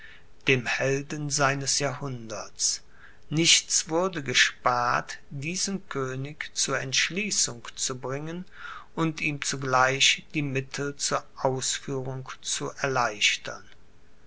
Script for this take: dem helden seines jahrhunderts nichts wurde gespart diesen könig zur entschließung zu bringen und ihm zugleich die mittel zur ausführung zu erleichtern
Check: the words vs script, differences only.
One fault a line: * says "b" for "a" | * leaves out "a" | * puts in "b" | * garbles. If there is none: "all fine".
all fine